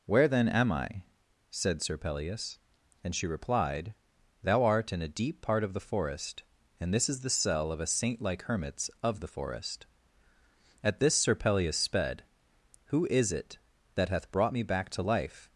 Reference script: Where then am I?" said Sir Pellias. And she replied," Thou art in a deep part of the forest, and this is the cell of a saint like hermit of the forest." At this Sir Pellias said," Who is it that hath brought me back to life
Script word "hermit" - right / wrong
wrong